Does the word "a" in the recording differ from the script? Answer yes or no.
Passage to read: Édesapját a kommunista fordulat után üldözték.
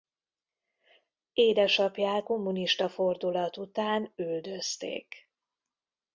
yes